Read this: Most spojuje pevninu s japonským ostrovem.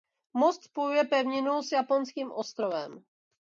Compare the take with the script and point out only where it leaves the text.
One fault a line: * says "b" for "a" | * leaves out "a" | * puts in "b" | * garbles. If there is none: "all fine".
all fine